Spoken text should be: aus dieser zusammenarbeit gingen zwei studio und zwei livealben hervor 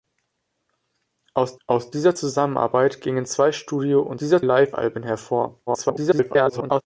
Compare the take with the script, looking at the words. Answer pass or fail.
fail